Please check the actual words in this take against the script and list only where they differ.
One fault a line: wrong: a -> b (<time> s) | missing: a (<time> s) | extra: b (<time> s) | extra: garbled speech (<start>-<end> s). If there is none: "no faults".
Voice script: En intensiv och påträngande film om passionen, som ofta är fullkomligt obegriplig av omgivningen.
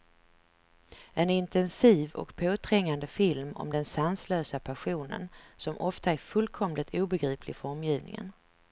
extra: den sanslösa (3.7 s)
wrong: av -> för (7.6 s)